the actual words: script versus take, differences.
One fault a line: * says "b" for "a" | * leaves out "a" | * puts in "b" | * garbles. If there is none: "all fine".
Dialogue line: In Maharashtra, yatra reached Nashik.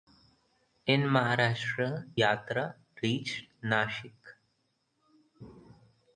all fine